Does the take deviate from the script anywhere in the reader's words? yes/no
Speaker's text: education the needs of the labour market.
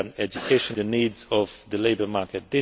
no